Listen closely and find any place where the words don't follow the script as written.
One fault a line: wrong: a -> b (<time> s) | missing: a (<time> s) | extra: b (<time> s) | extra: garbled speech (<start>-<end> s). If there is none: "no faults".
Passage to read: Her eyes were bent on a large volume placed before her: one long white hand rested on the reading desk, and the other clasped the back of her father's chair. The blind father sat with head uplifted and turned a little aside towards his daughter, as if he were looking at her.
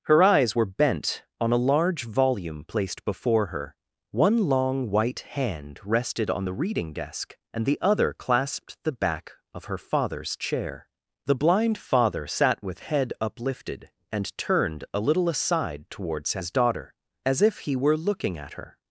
no faults